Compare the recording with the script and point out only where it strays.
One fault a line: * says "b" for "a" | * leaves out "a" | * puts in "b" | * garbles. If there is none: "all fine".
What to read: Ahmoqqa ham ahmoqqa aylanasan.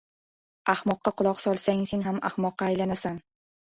* puts in "quloq solsang sen"